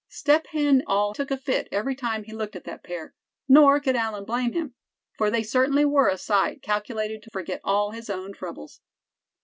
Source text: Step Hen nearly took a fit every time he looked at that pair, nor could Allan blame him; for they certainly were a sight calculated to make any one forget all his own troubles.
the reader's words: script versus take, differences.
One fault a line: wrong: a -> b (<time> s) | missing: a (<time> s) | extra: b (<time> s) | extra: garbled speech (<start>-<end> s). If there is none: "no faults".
wrong: nearly -> all (0.9 s)
missing: make any one (7.3 s)